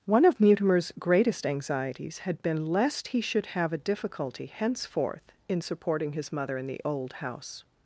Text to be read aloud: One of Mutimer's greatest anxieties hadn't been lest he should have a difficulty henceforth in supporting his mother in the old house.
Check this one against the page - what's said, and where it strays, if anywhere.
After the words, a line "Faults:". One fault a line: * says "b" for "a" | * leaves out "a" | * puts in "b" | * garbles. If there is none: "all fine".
One of Mutimer's greatest anxieties had been lest he should have a difficulty henceforth in supporting his mother in the old house.
Faults:
* says "had" for "hadn't"